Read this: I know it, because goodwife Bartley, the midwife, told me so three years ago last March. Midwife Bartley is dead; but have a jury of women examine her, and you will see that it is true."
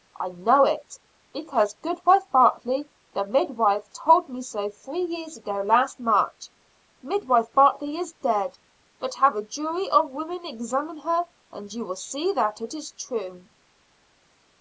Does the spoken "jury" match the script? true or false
true